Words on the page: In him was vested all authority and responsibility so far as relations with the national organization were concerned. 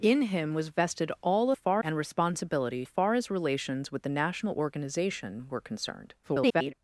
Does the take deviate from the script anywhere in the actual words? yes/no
yes